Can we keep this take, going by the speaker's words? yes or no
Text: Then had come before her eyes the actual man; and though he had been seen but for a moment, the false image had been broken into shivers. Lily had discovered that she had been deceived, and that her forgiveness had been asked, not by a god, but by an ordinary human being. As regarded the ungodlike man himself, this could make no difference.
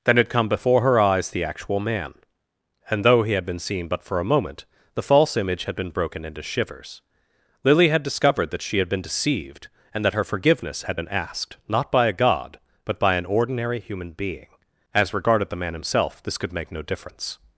no